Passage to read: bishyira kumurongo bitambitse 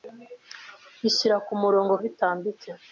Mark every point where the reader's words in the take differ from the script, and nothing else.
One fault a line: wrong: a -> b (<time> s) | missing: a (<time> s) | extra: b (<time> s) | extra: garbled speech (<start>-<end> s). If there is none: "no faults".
no faults